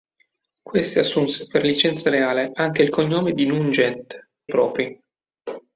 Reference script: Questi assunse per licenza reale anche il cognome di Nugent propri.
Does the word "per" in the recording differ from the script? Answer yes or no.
no